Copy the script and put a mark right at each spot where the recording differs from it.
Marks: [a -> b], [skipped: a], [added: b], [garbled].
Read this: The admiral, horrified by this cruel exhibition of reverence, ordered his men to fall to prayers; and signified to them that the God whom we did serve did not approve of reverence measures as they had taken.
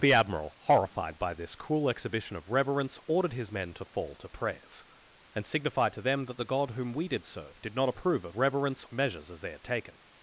The admiral, horrified by this cruel exhibition of reverence, ordered his men to fall to prayers; and signified to them that the God whom we did serve did not approve of reverence measures as they had taken.